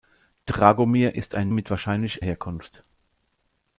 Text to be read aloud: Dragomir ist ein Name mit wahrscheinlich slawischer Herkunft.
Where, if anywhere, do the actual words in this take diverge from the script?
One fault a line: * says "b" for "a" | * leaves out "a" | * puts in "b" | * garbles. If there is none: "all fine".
* leaves out "Name"
* leaves out "slawischer"